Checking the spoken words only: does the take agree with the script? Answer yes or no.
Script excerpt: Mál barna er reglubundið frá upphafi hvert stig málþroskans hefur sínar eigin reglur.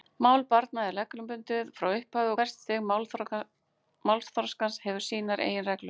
yes